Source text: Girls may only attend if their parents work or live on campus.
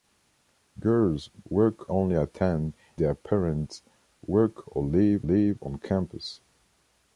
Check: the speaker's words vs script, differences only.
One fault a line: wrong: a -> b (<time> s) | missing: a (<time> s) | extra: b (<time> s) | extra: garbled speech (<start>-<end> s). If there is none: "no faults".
wrong: may -> work (1.5 s)
missing: if (2.7 s)
extra: live (5.2 s)